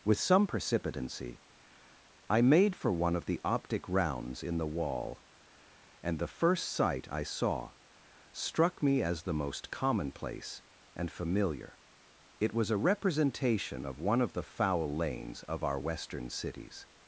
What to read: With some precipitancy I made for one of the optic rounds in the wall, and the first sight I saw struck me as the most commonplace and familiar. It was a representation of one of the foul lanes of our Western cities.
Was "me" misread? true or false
false